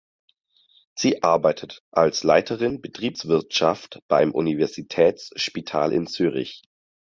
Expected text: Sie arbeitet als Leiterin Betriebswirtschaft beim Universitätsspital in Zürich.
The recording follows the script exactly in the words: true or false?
true